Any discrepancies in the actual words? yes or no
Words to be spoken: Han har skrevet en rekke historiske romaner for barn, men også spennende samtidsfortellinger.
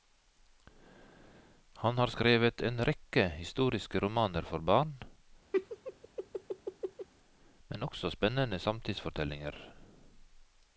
no